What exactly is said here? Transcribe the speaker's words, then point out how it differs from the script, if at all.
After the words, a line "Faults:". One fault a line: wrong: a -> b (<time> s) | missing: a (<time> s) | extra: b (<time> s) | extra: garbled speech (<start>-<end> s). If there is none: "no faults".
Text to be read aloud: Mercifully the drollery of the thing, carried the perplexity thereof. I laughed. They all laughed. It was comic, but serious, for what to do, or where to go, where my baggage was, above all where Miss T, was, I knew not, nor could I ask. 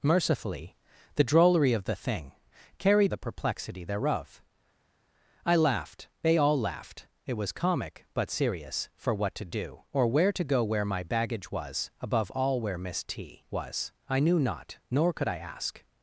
Mercifully the drollery of the thing, carried the perplexity thereof. I laughed. They all laughed. It was comic, but serious, for what to do, or where to go, where my baggage was, above all where Miss T, was, I knew not, nor could I ask.
Faults:
no faults